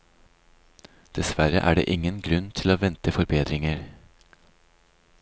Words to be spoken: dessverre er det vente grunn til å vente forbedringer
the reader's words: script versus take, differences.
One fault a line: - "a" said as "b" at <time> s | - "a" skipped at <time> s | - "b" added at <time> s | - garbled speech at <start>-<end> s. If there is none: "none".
- "vente" said as "ingen" at 1.9 s